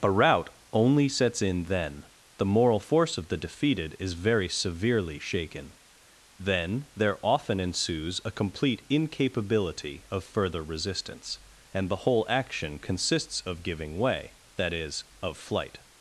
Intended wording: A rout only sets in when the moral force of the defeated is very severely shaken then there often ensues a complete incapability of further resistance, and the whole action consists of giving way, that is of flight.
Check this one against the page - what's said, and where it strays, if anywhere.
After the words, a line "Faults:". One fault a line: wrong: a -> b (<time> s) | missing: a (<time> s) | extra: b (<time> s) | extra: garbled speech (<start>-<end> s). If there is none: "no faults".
A rout only sets in then the moral force of the defeated is very severely shaken then there often ensues a complete incapability of further resistance, and the whole action consists of giving way, that is of flight.
Faults:
wrong: when -> then (1.6 s)